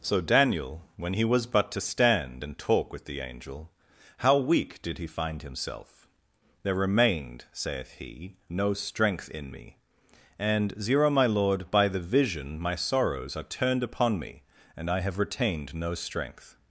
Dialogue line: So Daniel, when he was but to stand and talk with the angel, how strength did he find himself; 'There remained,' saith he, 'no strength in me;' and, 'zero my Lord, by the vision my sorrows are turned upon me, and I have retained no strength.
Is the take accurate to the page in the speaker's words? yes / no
no